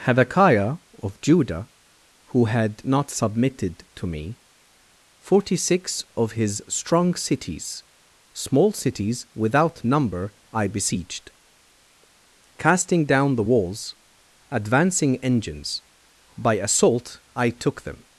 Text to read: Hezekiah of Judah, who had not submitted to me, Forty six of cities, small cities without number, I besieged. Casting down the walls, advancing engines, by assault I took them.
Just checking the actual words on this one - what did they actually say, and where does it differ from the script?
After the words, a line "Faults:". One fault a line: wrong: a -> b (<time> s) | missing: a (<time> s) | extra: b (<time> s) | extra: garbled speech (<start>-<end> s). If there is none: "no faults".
Hezekiah of Judah, who had not submitted to me, Forty six of his strong cities, small cities without number, I besieged. Casting down the walls, advancing engines, by assault I took them.
Faults:
extra: his strong (6.3 s)